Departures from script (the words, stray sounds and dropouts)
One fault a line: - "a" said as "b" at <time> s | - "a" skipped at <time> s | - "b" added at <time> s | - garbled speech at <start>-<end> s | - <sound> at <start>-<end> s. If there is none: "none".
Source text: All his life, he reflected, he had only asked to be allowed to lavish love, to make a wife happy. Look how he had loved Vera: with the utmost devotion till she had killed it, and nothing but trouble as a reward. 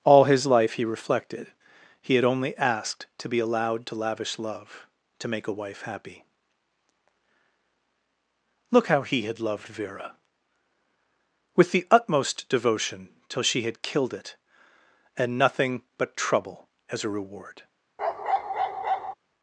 - bark at 18.0-19.1 s